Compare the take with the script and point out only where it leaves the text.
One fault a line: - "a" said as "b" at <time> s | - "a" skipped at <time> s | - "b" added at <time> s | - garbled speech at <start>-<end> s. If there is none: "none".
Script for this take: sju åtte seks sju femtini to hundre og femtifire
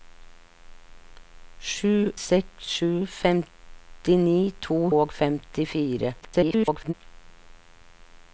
- "åtte" skipped at 2.1 s
- "hundre" skipped at 4.8 s
- garbled speech at 6.2-6.9 s